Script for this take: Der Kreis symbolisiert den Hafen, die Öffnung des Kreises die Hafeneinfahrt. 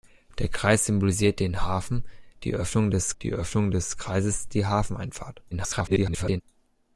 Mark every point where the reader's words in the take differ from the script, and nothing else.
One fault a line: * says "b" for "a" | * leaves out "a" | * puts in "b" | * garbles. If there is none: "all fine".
* puts in "die Öffnung des"
* garbles